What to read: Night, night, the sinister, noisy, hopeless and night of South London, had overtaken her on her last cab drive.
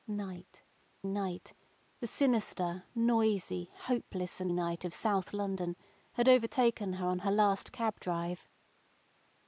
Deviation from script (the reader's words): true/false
false